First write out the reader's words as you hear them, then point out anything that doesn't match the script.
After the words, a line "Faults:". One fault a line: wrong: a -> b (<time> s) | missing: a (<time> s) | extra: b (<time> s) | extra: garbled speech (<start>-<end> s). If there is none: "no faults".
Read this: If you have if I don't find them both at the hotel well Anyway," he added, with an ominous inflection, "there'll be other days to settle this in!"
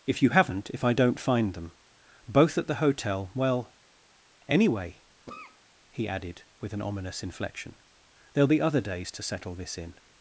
If you haven't if I don't find them both at the hotel well Anyway," he added, with an ominous inflection, "there'll be other days to settle this in!"
Faults:
wrong: have -> haven't (0.3 s)